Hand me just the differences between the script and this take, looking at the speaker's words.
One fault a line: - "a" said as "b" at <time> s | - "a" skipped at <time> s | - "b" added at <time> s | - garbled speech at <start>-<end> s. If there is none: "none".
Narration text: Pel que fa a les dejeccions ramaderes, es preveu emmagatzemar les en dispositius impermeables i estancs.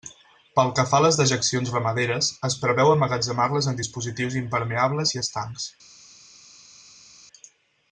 none